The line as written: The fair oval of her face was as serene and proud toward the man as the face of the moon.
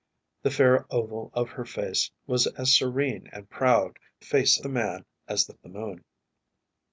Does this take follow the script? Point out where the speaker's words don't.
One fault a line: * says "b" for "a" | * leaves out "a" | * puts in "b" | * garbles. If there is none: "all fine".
* says "face" for "toward"
* leaves out "face"